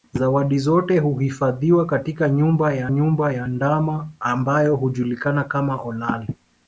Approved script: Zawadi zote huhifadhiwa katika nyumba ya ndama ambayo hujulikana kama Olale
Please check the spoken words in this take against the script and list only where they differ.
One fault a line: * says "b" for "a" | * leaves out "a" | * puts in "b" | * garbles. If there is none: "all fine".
* puts in "nyumba ya"